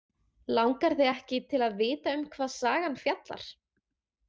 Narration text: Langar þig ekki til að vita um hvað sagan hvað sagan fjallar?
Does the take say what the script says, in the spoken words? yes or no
no